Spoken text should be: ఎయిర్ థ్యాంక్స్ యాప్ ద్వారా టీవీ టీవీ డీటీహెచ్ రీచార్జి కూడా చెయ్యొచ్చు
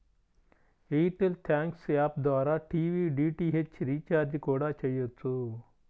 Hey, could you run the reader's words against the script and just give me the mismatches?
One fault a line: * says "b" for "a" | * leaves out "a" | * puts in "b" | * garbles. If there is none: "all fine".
* puts in "టెల్"
* leaves out "టీవీ"